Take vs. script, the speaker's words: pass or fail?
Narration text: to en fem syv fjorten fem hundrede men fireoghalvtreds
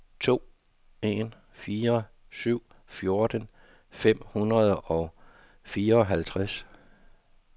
fail